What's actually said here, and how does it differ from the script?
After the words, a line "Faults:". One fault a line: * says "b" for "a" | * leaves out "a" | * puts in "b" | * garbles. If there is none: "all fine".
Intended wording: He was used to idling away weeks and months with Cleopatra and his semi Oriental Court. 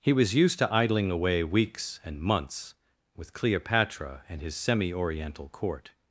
He was used to idling away weeks and months with Cleopatra and his semi Oriental Court.
Faults:
all fine